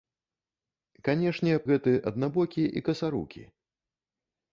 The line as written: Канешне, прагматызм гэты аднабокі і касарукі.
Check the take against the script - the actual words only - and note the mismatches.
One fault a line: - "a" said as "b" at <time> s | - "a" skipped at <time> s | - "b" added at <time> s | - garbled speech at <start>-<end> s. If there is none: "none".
- "прагматызм" skipped at 1.5 s